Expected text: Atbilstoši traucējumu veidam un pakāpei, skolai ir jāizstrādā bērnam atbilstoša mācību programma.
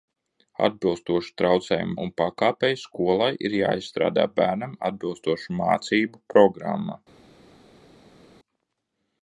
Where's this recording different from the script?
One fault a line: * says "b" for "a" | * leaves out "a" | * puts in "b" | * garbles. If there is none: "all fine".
* leaves out "veidam"